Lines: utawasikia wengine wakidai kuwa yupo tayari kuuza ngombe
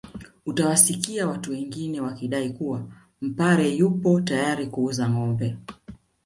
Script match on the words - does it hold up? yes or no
no